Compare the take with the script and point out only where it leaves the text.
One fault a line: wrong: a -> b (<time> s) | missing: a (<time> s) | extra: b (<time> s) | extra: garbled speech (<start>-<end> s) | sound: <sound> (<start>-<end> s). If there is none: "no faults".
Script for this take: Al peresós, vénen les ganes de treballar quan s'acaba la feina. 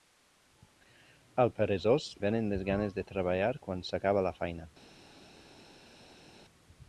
no faults